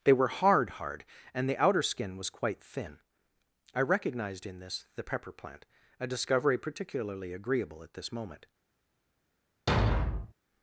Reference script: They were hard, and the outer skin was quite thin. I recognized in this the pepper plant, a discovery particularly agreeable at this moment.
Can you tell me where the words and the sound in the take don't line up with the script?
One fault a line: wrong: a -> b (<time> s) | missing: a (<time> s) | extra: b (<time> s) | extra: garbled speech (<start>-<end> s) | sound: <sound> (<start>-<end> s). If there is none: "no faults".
extra: hard (0.7 s)
sound: thud (9.7-10.3 s)